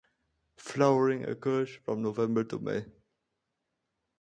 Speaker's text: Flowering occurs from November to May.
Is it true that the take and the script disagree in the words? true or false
false